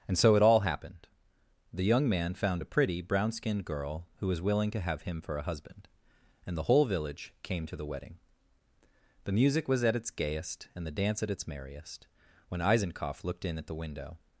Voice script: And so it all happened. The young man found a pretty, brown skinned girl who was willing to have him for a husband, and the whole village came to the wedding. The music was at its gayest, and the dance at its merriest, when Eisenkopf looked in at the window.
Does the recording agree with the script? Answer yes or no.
yes